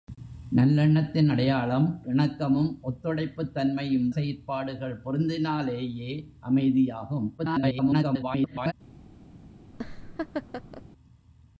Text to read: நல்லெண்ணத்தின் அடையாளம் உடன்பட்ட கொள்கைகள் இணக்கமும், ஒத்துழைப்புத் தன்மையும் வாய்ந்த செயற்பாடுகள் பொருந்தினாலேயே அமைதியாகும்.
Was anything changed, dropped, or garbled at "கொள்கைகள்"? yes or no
yes